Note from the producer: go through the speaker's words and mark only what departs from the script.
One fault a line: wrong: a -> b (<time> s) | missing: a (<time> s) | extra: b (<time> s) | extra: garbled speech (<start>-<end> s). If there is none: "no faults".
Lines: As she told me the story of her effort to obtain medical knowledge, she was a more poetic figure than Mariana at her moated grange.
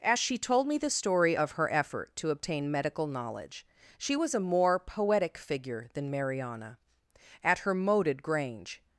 no faults